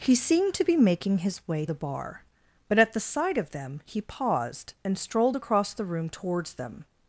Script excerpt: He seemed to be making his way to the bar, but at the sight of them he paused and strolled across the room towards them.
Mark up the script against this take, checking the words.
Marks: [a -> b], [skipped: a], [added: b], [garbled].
He seemed to be making his way [skipped: to] the bar, but at the sight of them he paused and strolled across the room towards them.